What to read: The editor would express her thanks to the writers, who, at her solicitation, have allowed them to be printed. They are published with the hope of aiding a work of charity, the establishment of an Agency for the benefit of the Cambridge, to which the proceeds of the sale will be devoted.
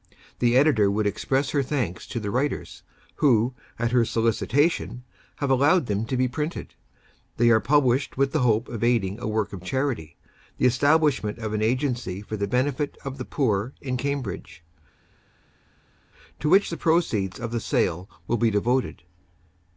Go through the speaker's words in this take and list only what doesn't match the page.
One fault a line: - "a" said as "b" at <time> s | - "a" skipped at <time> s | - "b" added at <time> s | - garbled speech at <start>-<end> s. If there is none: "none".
- "poor in" added at 13.2 s